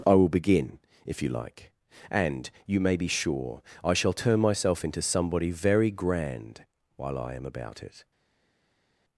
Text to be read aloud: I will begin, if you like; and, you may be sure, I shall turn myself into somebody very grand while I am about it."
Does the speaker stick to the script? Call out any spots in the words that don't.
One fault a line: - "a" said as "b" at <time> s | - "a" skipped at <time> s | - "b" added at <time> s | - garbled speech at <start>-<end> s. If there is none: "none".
none